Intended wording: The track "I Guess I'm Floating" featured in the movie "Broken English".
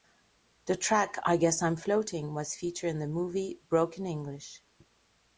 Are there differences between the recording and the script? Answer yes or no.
yes